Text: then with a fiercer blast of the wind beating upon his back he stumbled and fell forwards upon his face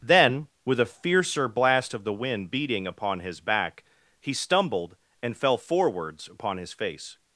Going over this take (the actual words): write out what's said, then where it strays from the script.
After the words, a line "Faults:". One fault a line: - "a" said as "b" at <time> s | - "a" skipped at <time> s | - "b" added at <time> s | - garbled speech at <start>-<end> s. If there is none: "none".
then with a fiercer blast of the wind beating upon his back he stumbled and fell forwards upon his face
Faults:
none